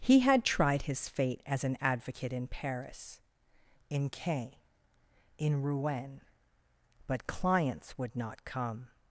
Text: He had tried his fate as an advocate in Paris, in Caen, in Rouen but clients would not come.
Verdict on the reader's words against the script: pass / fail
pass